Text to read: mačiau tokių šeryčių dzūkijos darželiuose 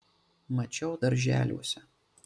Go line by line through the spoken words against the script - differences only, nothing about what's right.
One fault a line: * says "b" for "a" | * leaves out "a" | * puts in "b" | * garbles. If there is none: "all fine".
* leaves out "tokių šeryčių dzūkijos"